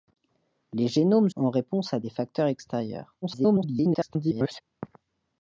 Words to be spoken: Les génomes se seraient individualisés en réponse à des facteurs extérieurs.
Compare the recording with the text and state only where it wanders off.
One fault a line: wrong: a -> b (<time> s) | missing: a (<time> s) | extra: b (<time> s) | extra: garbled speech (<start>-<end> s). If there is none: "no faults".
missing: se seraient individualisés (1.3 s)
extra: garbled speech (3.2-4.6 s)